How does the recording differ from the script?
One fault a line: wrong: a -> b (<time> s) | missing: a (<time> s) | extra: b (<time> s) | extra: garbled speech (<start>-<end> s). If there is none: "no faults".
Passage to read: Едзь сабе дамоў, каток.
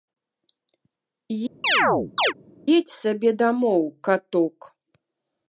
no faults